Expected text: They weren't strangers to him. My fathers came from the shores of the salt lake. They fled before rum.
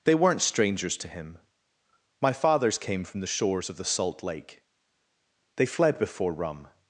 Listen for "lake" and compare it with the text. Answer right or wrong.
right